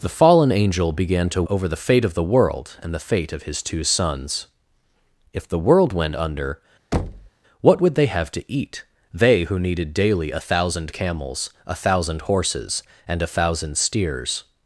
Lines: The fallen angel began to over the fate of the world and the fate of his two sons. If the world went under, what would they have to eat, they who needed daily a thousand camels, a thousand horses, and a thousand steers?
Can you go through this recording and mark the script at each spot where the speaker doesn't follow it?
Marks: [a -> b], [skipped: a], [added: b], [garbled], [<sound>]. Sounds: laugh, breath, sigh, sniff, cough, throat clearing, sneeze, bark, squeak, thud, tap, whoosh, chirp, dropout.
The fallen angel began to over the fate of the world and the fate of his two sons. If the world went under, [thud] what would they have to eat, they who needed daily a thousand camels, a thousand horses, and a thousand steers?